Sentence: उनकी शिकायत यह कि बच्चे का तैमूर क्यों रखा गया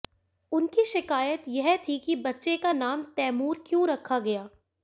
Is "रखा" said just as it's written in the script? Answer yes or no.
yes